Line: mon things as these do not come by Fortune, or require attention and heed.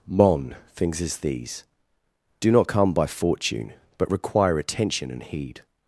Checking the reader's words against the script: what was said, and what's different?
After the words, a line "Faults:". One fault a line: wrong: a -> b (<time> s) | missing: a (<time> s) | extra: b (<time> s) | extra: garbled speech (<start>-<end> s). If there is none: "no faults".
mon things as these do not come by Fortune, but require attention and heed.
Faults:
wrong: or -> but (4.0 s)